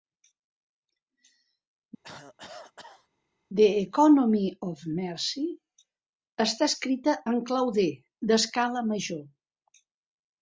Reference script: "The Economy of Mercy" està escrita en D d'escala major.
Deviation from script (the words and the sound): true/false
true